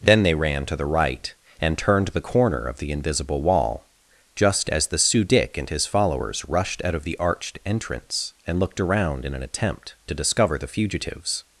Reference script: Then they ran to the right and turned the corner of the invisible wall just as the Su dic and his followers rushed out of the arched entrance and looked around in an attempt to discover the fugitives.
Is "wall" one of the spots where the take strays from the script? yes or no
no